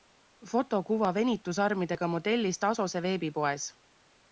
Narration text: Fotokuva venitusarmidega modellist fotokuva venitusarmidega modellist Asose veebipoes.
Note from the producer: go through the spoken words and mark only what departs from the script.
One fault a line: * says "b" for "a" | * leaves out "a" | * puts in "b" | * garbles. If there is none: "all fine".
* leaves out "fotokuva venitusarmidega modellist"